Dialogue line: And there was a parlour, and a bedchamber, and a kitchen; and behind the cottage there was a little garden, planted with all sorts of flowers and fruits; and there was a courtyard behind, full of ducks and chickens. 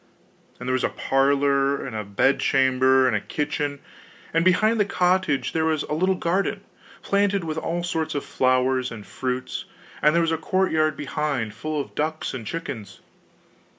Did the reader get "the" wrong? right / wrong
right